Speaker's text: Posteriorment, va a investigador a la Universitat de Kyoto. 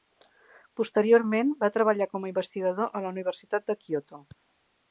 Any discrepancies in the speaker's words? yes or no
yes